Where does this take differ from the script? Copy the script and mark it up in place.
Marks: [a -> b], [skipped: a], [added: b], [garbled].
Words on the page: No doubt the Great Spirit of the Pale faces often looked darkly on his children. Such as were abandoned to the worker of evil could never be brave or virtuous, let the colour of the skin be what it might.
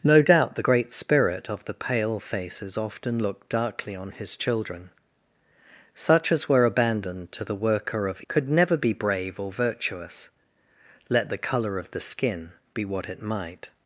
No doubt the Great Spirit of the Pale faces often looked darkly on his children. Such as were abandoned to the worker of [skipped: evil] could never be brave or virtuous, let the colour of the skin be what it might.